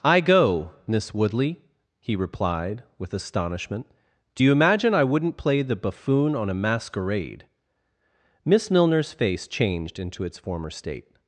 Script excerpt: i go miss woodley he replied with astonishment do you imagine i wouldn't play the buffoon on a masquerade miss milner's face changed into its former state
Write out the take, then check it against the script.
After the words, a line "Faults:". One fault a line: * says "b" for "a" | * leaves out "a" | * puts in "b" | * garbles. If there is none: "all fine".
i go miss woodley he replied with astonishment do you imagine i wouldn't play the buffoon on a masquerade miss milner's face changed into its former state
Faults:
all fine